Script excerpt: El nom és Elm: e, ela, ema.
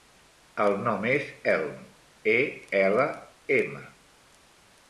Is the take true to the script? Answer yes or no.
yes